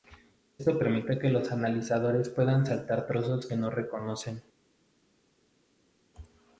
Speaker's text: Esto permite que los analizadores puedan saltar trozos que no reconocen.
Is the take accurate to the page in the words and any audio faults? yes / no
yes